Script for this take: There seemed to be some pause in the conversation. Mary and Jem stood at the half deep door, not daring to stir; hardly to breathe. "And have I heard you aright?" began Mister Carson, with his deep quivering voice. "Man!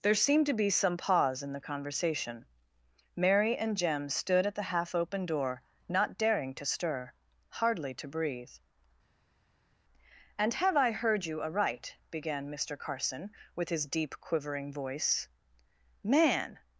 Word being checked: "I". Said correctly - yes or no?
yes